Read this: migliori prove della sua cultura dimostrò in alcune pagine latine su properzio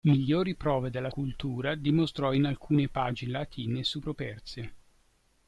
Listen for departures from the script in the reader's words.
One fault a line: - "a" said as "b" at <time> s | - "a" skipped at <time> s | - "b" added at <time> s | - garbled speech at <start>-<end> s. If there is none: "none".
- "sua" skipped at 1.1 s